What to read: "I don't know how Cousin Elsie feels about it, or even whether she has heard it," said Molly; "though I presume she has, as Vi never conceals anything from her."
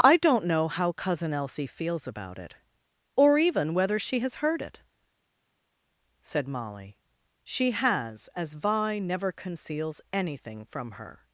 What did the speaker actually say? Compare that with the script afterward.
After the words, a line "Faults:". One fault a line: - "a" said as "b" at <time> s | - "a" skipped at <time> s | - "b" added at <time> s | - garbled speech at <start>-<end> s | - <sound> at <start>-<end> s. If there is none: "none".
"I don't know how Cousin Elsie feels about it, or even whether she has heard it," said Molly; "she has, as Vi never conceals anything from her."
Faults:
- "though I presume" skipped at 7.0 s